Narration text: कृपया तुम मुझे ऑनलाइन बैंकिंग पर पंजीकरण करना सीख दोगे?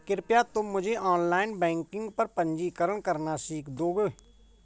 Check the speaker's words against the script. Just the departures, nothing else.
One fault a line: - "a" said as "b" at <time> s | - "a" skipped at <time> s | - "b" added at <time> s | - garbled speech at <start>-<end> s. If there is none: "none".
none